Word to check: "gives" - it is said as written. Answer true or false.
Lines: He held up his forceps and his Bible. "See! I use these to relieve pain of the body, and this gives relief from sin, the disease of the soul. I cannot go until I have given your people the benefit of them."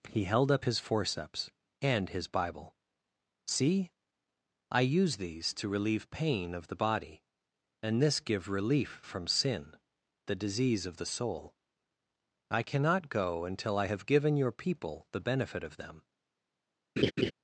false